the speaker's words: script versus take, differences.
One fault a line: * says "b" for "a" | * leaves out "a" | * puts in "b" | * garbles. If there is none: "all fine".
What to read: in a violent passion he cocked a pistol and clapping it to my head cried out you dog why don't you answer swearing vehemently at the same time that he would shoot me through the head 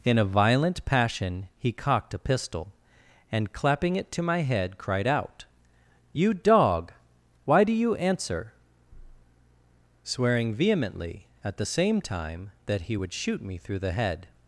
* says "do" for "don't"